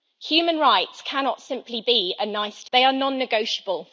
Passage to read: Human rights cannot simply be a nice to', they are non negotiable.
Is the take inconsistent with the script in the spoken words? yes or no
no